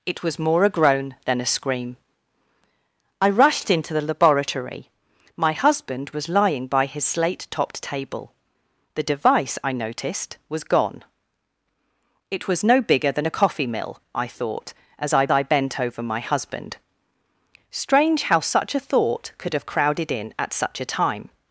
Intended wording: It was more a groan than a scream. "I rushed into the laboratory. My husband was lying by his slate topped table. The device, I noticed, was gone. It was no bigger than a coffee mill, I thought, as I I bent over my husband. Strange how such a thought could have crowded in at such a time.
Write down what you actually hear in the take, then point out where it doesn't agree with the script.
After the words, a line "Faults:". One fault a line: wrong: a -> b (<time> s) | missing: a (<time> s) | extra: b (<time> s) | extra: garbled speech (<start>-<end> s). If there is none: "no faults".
It was more a groan than a scream. "I rushed into the laboratory. My husband was lying by his slate topped table. The device, I noticed, was gone. It was no bigger than a coffee mill, I thought, as I I bent over my husband. Strange how such a thought could have crowded in at such a time.
Faults:
no faults